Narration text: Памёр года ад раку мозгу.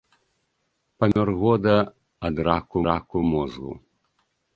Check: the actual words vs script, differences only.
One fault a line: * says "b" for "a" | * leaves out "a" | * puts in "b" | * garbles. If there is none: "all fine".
* puts in "раку"